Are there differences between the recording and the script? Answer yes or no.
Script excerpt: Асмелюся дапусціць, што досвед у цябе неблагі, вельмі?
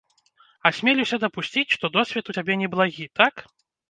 yes